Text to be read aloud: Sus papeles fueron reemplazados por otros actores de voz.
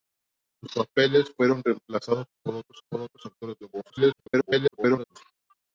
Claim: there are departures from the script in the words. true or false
true